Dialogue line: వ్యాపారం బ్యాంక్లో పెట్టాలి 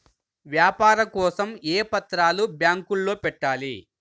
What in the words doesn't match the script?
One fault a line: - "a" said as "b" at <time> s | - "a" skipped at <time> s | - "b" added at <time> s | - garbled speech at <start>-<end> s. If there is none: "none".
- "కోసం ఏ పత్రాలు" added at 1.2 s